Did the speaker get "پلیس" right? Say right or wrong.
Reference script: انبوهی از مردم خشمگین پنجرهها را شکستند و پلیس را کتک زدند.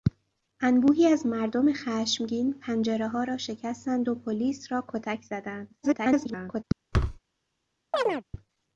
right